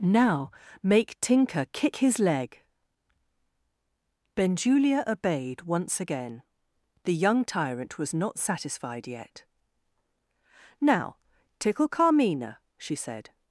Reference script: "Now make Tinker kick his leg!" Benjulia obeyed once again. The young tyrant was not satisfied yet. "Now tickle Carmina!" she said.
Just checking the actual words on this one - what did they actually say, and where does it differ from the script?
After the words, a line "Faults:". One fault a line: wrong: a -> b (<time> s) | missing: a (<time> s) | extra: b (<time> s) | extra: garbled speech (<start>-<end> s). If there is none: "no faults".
"Now make Tinker kick his leg!" Benjulia obeyed once again. The young tyrant was not satisfied yet. "Now tickle Carmina!" she said.
Faults:
no faults